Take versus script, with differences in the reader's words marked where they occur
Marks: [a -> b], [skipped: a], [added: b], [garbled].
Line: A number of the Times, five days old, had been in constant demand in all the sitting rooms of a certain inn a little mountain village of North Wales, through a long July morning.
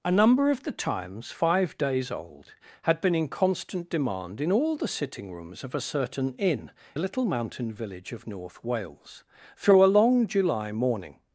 A number of the Times, five days old, had been in constant demand in all the sitting rooms of a certain inn a little mountain village of North Wales, through a long July morning.